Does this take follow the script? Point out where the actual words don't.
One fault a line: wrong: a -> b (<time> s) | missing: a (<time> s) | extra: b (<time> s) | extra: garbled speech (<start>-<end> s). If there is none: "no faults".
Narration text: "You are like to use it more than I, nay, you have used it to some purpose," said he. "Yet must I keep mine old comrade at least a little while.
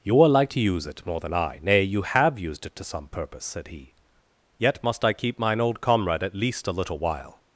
no faults